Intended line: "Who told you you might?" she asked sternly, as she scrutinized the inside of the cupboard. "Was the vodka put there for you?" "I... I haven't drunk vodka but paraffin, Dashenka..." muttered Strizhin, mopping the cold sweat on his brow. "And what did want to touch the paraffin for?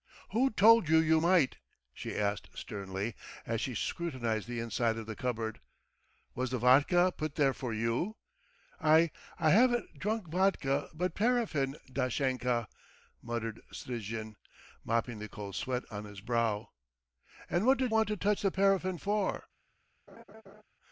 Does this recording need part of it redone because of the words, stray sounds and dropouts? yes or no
yes